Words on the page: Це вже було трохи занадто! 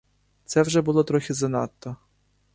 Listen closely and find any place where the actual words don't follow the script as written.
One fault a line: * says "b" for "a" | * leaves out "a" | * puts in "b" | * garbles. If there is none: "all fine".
all fine